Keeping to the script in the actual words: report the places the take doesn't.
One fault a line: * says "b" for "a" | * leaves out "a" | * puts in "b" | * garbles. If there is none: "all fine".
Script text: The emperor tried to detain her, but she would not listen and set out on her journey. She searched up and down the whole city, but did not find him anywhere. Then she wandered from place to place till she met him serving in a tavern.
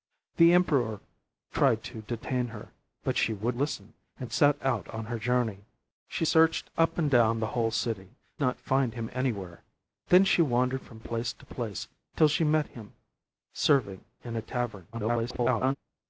* leaves out "not"
* leaves out "but did"
* garbles